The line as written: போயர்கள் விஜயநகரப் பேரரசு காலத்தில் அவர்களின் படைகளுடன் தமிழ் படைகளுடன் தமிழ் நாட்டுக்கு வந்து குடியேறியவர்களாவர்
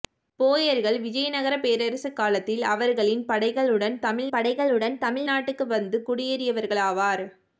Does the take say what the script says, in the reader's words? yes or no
yes